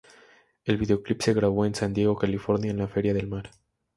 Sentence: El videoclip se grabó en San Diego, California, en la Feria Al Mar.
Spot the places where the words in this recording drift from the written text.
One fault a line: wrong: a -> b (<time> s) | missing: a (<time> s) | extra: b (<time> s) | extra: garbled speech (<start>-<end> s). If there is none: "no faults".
wrong: Al -> Del (3.1 s)